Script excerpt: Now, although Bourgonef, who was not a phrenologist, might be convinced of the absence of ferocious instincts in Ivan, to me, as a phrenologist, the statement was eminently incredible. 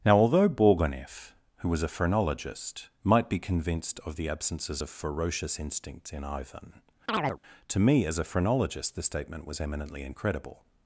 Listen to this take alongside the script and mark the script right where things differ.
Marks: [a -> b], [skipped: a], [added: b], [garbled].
Now, although Bourgonef, who was [skipped: not] a phrenologist, might be convinced of the [absence -> absences] of ferocious instincts in Ivan, to me, as a phrenologist, the statement was eminently incredible.